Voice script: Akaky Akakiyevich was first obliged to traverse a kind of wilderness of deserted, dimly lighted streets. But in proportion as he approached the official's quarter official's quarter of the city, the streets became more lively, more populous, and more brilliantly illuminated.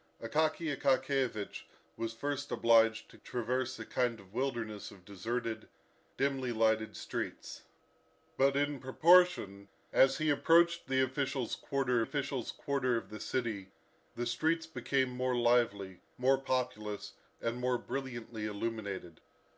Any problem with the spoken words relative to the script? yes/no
no